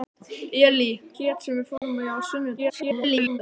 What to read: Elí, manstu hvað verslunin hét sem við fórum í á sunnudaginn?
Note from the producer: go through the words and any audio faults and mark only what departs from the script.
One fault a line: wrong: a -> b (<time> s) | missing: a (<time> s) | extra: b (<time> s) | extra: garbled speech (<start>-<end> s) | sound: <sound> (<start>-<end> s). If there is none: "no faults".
missing: manstu hvað verslunin (0.9 s)
sound: dropout (1.8-1.8 s)
extra: garbled speech (2.6-3.4 s)